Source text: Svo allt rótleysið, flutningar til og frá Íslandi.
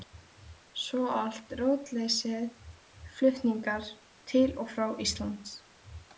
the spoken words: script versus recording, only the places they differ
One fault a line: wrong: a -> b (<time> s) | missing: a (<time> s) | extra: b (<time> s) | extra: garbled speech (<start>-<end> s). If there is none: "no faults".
no faults